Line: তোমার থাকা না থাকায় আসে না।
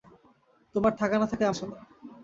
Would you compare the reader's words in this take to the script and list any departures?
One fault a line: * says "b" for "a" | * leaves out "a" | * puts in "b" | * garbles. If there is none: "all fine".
all fine